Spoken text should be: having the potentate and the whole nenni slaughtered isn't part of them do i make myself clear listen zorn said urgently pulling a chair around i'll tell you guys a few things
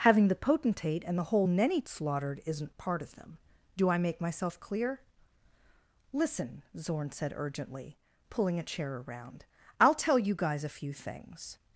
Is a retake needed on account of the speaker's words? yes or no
no